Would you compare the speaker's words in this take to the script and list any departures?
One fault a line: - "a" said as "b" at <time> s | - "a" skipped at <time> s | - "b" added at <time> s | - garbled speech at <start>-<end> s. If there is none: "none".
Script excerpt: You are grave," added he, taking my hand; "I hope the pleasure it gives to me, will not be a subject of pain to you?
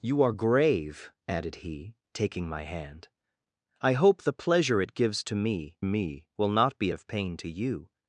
- "me" added at 5.8 s
- "a subject" skipped at 6.9 s